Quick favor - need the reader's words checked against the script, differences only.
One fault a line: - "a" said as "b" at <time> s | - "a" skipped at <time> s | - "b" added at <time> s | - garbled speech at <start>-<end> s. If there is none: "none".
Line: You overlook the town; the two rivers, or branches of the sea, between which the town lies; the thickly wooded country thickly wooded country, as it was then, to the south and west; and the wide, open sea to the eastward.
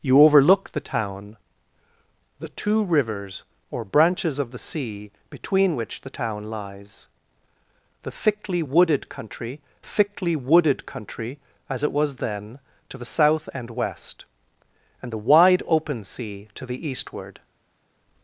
none